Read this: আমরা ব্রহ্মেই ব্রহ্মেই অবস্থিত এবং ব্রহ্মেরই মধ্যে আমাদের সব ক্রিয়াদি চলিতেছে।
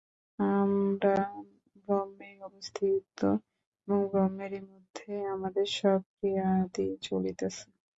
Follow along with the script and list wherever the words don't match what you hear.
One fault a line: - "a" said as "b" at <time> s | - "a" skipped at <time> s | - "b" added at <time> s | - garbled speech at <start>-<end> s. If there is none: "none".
- "ব্রহ্মেই" skipped at 2.4 s